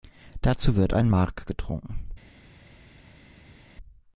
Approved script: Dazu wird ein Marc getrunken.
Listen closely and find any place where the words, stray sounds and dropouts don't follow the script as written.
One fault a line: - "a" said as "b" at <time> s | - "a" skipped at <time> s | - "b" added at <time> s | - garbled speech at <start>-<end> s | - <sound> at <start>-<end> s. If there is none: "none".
none